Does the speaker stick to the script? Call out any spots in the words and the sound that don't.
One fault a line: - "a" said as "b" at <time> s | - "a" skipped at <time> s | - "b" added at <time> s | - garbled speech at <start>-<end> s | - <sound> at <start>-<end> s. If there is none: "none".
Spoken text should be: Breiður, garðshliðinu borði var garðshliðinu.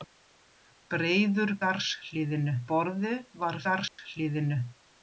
- dropout at 3.9-4.0 s